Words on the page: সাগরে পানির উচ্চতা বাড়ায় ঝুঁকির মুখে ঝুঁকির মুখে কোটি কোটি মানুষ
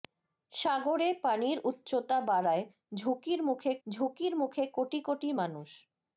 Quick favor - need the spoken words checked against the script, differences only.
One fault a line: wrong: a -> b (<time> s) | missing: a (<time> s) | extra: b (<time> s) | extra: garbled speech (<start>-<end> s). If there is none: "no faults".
no faults